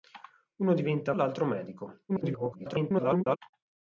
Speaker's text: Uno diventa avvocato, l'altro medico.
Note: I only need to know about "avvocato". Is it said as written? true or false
false